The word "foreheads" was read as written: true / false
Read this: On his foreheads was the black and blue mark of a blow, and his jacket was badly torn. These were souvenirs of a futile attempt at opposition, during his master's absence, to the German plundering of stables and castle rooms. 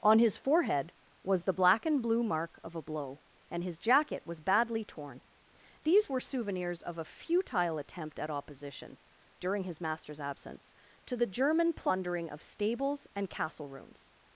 false